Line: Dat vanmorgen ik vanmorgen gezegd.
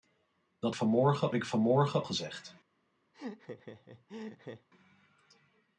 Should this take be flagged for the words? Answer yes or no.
no